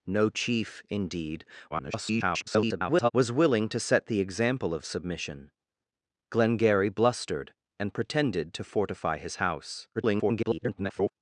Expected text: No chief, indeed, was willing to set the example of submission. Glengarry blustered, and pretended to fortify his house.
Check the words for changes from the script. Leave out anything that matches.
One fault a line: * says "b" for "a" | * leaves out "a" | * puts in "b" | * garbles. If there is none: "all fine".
* garbles
* garbles